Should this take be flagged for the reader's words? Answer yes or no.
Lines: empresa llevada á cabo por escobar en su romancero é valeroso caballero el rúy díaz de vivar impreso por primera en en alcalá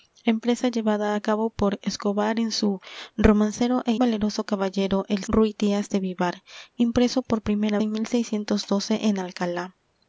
no